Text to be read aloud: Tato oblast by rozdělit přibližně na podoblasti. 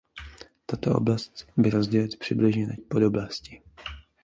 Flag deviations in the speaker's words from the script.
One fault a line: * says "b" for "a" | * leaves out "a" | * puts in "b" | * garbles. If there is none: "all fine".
all fine